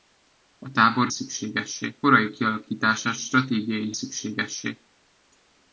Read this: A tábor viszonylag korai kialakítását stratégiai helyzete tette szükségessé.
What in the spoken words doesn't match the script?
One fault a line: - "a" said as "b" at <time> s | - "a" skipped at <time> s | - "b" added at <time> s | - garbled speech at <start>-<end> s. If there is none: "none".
- "viszonylag" said as "szükségessé" at 1.1 s
- "helyzete tette" skipped at 3.9 s